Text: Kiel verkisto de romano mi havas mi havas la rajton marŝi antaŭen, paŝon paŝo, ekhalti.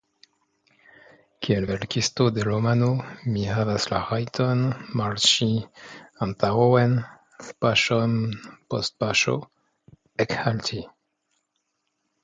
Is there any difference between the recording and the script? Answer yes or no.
yes